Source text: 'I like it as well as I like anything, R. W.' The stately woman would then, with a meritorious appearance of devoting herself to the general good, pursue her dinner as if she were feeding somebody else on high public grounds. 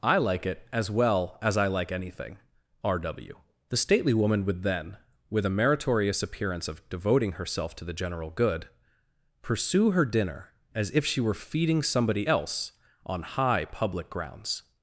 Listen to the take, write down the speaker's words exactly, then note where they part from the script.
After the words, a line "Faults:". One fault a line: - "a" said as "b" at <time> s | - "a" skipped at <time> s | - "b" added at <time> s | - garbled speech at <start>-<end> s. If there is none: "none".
'I like it as well as I like anything, R. W.' The stately woman would then, with a meritorious appearance of devoting herself to the general good, pursue her dinner as if she were feeding somebody else on high public grounds.
Faults:
none